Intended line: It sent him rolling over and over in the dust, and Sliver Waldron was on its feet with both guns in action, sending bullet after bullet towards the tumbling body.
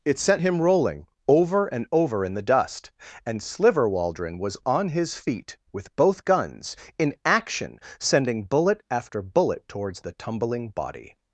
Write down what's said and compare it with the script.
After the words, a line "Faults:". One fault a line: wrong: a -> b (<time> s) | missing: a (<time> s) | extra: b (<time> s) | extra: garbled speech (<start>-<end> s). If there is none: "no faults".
It sent him rolling over and over in the dust, and Sliver Waldron was on his feet with both guns in action, sending bullet after bullet towards the tumbling body.
Faults:
wrong: its -> his (4.9 s)